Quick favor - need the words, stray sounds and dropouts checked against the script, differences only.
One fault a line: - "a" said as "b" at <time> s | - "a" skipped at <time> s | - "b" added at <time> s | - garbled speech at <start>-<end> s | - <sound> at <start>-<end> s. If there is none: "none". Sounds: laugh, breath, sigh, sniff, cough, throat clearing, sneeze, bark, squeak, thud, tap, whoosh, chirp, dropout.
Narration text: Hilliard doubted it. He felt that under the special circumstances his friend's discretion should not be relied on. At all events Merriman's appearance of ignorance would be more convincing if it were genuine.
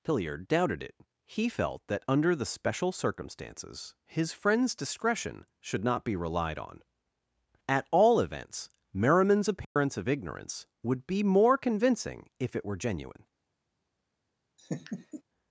- dropout at 9.6-9.8 s
- laugh at 14.6-15.2 s